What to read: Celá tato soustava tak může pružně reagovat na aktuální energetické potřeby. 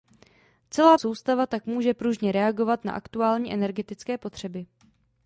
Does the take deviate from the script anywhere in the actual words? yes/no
yes